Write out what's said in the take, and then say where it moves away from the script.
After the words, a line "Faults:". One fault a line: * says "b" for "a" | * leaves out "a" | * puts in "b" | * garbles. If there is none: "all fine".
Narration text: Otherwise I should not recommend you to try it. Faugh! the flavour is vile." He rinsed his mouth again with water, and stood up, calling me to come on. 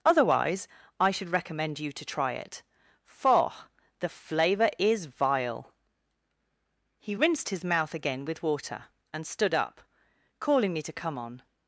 Otherwise I should recommend you to try it. Faugh! the flavour is vile." He rinsed his mouth again with water, and stood up, calling me to come on.
Faults:
* leaves out "not"